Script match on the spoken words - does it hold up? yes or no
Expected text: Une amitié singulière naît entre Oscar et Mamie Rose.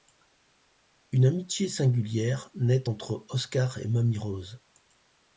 yes